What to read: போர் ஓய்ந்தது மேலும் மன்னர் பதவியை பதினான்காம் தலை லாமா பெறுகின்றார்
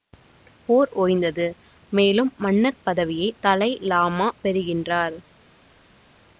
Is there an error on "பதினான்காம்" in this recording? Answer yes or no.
yes